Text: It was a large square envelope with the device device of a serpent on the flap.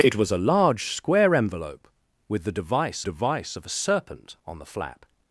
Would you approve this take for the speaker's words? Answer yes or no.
yes